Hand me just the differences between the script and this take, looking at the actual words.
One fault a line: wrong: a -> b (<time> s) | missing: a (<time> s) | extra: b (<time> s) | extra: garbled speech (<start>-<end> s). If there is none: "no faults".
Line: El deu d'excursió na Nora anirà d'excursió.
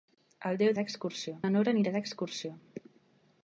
no faults